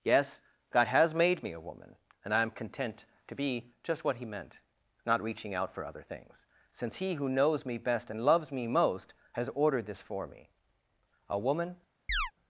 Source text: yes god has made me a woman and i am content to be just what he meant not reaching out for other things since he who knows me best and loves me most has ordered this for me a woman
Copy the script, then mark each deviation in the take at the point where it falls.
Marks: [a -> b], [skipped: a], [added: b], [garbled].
yes god has made me a woman and i am content to be just what he meant not reaching out for other things since he who knows me best and loves me most has ordered this for me a woman